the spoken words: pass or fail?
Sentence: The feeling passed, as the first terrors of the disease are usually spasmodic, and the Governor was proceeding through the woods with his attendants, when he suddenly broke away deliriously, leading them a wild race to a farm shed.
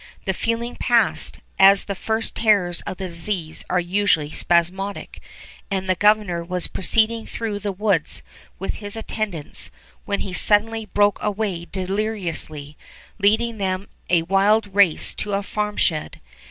pass